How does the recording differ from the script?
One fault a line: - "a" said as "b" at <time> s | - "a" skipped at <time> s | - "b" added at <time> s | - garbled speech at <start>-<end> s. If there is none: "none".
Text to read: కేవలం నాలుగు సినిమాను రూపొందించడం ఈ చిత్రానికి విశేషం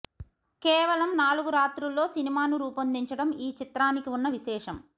- "రాత్రుల్లో" added at 1.5 s
- "ఉన్న" added at 4.1 s